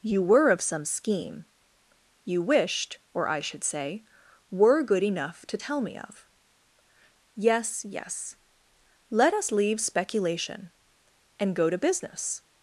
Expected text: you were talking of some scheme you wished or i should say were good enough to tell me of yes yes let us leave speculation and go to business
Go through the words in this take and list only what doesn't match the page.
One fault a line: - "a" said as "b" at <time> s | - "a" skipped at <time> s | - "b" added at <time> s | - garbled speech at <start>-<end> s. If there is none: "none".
- "talking" skipped at 0.5 s